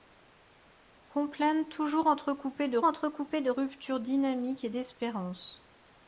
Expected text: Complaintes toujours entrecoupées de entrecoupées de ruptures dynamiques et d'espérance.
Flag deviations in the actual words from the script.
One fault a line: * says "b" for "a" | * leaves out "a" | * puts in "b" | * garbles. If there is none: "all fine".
all fine